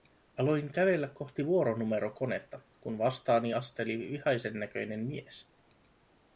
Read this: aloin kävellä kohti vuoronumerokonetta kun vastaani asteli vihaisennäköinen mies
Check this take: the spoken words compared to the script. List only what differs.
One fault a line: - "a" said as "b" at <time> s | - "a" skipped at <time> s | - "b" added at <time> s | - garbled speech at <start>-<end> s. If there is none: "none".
none